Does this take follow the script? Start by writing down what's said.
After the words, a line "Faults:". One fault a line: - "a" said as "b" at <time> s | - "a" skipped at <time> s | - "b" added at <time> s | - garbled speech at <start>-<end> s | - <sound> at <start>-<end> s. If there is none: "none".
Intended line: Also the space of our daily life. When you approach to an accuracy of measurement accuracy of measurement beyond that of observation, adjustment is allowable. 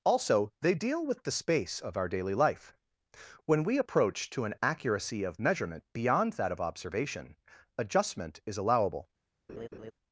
Also they deal with the space of our daily life. When we approach to an accuracy of measurement beyond that of observation, adjustment is allowable.
Faults:
- "they deal with" added at 0.6 s
- "you" said as "we" at 3.6 s
- "accuracy of measurement" skipped at 5.9 s
- laugh at 9.5-9.9 s